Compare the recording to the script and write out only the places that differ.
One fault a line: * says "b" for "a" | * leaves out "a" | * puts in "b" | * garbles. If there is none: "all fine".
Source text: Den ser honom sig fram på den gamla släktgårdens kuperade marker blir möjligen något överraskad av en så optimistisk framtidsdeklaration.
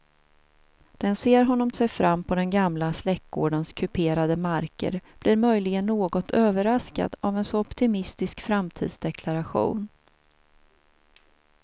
all fine